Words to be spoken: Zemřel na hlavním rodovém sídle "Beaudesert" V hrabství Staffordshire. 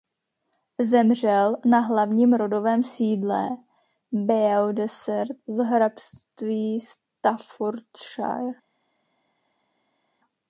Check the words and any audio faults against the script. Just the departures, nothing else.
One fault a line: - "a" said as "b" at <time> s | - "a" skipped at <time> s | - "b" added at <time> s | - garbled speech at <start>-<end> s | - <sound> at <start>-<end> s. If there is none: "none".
none